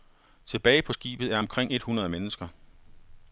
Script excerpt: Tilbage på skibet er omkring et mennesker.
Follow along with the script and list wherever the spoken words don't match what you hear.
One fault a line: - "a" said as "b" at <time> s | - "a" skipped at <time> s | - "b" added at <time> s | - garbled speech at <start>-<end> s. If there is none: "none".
- "hundrede" added at 1.8 s